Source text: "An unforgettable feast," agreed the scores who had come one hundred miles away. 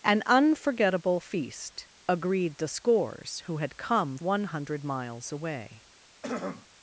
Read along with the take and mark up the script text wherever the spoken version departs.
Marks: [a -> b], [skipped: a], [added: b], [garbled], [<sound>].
"An unforgettable feast," agreed the scores who had come one hundred miles away. [throat clearing]